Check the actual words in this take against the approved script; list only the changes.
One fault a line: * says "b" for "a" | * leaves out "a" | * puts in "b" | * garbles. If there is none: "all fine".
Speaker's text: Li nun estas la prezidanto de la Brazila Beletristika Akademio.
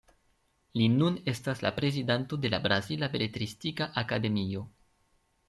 all fine